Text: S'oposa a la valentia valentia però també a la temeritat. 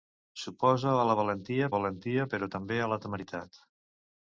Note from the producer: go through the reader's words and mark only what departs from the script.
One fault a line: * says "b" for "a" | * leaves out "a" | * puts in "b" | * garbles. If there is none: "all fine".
all fine